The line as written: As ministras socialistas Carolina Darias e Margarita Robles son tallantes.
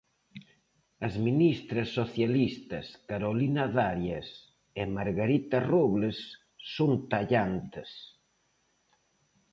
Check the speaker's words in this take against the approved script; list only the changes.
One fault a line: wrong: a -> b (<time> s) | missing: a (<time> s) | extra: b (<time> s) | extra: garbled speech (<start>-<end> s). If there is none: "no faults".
no faults